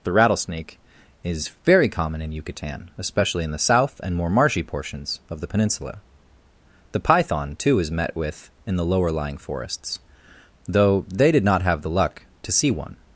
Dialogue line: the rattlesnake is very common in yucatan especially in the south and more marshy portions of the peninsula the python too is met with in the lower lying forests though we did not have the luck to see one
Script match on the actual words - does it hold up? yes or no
no